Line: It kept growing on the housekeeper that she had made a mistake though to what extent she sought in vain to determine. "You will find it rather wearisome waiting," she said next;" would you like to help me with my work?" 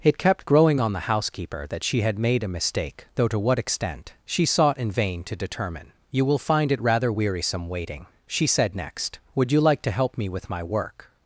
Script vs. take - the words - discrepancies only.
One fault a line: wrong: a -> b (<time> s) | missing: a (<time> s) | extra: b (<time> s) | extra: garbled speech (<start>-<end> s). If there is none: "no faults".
no faults